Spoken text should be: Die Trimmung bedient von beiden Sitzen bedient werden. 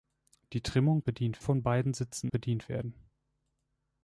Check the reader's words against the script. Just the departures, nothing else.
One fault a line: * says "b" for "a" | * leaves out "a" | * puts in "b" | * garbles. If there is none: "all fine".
all fine